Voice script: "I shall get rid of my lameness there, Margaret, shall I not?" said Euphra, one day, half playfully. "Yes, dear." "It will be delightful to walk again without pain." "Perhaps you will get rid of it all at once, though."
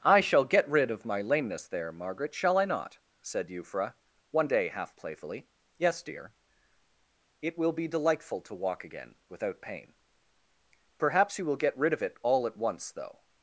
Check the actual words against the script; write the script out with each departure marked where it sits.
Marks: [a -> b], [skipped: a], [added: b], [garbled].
"I shall get rid of my lameness there, Margaret, shall I not?" said Euphra, one day, half playfully. "Yes, dear." "It will be delightful to walk again without pain." "Perhaps you will get rid of it all at once, though."